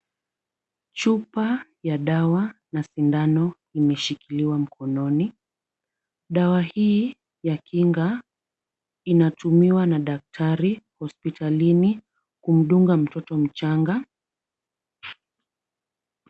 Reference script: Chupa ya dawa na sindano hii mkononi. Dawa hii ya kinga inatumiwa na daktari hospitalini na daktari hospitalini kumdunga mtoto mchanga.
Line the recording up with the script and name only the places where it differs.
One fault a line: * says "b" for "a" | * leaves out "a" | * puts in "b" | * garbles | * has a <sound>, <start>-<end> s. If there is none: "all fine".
* says "imeshikiliwa" for "hii"
* leaves out "na daktari hospitalini"